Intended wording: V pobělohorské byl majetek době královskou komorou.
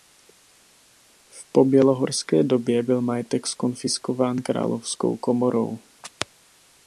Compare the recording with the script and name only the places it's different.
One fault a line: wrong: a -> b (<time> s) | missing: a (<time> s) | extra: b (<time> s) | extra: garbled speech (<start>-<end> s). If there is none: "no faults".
extra: době (2.4 s)
wrong: době -> zkonfiskován (3.5 s)